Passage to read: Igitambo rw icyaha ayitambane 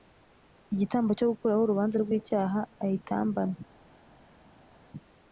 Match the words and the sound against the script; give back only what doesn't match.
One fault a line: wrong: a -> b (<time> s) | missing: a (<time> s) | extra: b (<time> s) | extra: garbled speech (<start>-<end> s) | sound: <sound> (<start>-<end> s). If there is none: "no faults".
extra: cyo gukuraho urubanza (1.2 s)